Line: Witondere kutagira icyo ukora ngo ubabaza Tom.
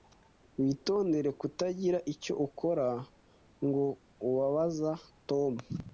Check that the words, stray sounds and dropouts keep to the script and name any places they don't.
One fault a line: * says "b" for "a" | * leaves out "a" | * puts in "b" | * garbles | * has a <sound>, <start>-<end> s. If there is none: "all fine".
all fine